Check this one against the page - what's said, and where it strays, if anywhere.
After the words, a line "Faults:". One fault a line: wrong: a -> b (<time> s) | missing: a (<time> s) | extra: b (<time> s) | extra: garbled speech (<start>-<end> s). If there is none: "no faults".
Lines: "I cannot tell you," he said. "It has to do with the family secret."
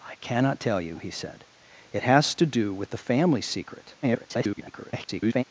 "I cannot tell you," he said. "It has to do with the family secret." [garbled]
Faults:
extra: garbled speech (4.0-5.4 s)